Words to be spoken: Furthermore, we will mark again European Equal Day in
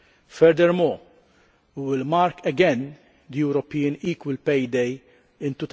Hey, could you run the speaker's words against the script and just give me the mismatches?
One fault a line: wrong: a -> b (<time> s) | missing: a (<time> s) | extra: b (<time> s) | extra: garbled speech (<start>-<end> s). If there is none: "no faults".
extra: Pay (4.4 s)